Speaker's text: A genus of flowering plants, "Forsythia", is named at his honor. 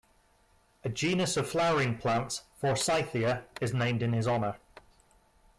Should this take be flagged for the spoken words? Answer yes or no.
yes